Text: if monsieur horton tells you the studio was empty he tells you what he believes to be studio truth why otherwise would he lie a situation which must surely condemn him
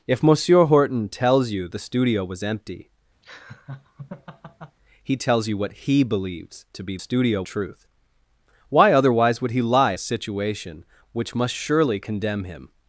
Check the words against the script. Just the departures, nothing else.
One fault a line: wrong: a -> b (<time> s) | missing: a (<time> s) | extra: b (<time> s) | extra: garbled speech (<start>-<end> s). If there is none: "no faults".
no faults